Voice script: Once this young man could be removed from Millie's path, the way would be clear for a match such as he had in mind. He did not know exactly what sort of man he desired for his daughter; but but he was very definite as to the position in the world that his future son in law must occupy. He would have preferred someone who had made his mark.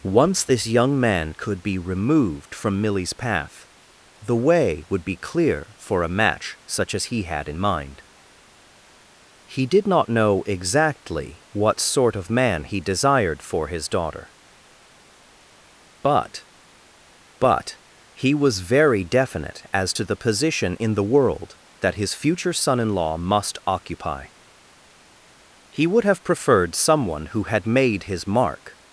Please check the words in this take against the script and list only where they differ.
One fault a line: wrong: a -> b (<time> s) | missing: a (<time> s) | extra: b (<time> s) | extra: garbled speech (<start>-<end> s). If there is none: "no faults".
no faults